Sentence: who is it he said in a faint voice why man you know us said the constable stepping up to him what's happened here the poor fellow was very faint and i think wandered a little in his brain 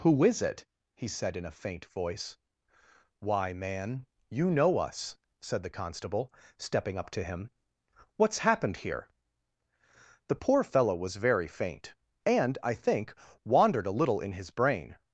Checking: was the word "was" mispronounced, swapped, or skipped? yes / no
no